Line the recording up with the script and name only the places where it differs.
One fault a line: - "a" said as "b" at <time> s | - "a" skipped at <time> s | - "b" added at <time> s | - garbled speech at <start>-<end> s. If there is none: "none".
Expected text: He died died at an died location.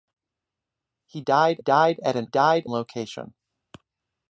none